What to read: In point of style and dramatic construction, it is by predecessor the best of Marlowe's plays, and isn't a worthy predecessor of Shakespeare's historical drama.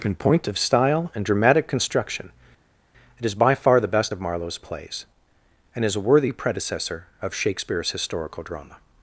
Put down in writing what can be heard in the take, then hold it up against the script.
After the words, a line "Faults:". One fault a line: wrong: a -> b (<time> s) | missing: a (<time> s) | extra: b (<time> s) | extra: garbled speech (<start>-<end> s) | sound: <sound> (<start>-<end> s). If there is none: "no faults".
In point of style and dramatic construction, it is by far the best of Marlowe's plays, and is a worthy predecessor of Shakespeare's historical drama.
Faults:
wrong: predecessor -> far (3.5 s)
wrong: isn't -> is (5.8 s)